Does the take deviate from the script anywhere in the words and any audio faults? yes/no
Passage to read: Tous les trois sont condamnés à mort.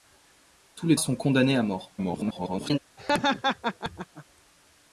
yes